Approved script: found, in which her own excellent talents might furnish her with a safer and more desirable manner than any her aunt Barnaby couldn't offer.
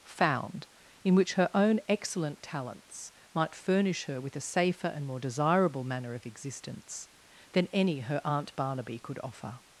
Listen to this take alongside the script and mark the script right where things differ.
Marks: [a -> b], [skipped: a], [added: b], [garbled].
found, in which her own excellent talents might furnish her with a safer and more desirable manner [added: of existence] than any her aunt Barnaby [couldn't -> could] offer.